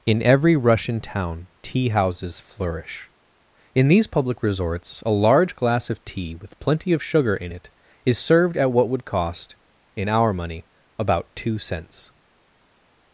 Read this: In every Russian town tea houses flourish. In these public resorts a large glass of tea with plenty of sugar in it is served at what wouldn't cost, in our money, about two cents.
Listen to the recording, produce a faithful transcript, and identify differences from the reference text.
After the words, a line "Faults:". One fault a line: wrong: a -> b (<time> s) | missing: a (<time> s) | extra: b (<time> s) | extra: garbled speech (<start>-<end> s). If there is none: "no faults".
In every Russian town tea houses flourish. In these public resorts a large glass of tea with plenty of sugar in it is served at what would cost, in our money, about two cents.
Faults:
wrong: wouldn't -> would (8.9 s)